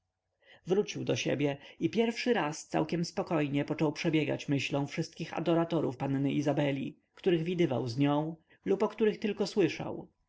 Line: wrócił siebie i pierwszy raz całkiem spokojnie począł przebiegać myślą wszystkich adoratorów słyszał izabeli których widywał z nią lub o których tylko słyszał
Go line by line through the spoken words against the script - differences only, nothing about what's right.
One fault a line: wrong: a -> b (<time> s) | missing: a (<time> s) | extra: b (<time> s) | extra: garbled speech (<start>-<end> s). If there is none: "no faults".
extra: do (1.0 s)
wrong: słyszał -> panny (5.9 s)